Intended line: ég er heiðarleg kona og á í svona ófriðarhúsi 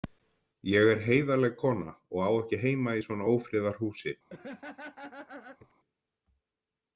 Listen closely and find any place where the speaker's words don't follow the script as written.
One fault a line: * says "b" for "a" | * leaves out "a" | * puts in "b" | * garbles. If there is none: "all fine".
* puts in "ekki heima"